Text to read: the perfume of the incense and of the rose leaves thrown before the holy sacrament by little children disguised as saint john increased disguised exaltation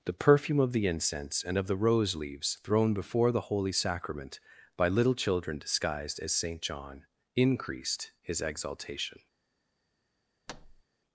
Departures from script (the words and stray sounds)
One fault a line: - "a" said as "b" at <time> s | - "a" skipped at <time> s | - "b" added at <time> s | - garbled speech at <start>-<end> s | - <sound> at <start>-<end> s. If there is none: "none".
- "disguised" said as "his" at 8.2 s
- thud at 10.5-10.8 s